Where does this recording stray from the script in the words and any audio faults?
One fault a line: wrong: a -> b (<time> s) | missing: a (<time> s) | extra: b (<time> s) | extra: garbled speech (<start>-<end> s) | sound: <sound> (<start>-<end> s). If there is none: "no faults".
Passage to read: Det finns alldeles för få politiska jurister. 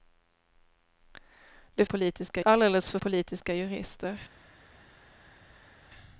wrong: finns -> politiska (1.8 s)
missing: få (3.0 s)